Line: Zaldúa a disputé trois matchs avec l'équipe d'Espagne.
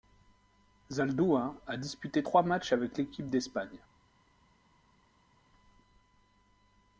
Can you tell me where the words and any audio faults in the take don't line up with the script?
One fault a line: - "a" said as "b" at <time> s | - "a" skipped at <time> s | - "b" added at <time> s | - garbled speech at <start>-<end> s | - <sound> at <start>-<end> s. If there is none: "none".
none